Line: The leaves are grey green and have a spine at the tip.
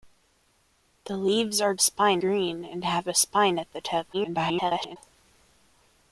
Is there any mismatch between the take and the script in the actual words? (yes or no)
yes